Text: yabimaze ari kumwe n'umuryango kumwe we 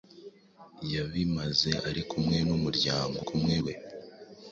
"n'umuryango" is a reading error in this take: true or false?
false